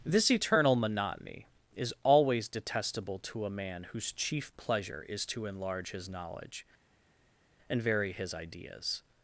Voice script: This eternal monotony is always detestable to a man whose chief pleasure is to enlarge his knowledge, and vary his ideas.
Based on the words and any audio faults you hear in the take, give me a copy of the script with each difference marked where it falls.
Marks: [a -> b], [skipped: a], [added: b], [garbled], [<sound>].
This eternal monotony is always detestable to a man whose chief pleasure is to enlarge his knowledge, and vary his ideas.